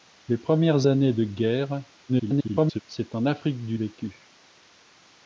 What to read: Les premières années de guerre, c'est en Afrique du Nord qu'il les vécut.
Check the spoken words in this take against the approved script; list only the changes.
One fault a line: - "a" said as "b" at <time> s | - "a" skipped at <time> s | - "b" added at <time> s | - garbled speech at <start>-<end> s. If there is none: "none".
- garbled speech at 2.1-2.8 s
- "Nord qu'il les" skipped at 3.8 s